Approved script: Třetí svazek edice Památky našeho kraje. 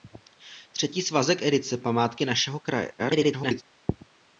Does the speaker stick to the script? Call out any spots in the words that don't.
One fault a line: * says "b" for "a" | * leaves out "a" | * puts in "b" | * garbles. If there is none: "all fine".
* garbles